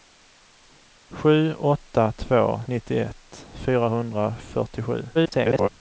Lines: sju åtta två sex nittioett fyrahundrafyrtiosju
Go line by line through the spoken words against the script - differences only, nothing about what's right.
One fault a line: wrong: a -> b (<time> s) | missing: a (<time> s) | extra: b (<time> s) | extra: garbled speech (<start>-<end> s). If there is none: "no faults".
missing: sex (2.6 s)
extra: garbled speech (5.1-5.7 s)